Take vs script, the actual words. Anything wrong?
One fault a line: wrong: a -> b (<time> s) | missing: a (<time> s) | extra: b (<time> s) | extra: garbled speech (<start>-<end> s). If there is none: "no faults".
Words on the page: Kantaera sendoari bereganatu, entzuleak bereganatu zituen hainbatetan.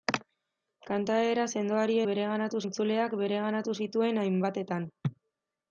no faults